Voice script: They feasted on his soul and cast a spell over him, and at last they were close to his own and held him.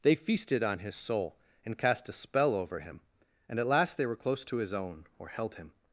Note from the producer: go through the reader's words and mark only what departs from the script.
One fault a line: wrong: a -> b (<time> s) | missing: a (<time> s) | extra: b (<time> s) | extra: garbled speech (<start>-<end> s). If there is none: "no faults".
wrong: and -> or (5.2 s)